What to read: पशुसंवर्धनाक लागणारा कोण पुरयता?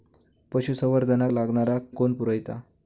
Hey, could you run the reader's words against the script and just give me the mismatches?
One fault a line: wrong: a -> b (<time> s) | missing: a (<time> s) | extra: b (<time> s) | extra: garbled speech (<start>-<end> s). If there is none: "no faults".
no faults